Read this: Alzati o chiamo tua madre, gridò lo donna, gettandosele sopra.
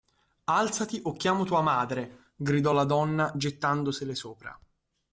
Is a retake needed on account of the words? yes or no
yes